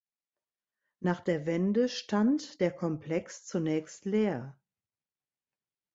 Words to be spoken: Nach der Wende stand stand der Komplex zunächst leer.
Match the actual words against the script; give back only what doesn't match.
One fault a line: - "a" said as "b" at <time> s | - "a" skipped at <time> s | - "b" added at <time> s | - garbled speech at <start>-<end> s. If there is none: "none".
- "stand" skipped at 2.6 s